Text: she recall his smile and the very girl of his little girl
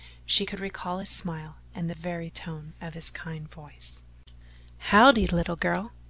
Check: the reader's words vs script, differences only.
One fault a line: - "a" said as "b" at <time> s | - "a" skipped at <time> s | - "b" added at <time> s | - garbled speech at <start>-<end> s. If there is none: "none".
- "could" added at 0.5 s
- "girl" said as "tone" at 2.3 s
- "kind voice howdye" added at 3.1 s